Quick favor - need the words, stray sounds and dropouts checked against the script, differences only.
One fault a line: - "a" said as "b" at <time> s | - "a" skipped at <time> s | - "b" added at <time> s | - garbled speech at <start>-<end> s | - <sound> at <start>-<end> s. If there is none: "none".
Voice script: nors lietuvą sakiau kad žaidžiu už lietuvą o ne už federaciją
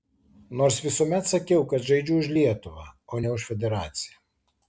- "lietuvą" said as "visuomet" at 0.8 s